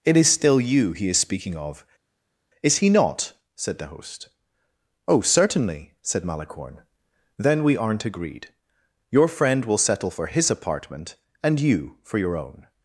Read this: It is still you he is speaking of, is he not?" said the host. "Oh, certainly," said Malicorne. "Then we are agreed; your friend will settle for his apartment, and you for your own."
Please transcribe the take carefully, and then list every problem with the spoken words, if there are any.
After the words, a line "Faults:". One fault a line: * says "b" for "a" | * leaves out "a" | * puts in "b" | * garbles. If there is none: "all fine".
It is still you he is speaking of, is he not?" said the host. "Oh, certainly," said Malicorne. "Then we aren't agreed; your friend will settle for his apartment, and you for your own."
Faults:
* says "aren't" for "are"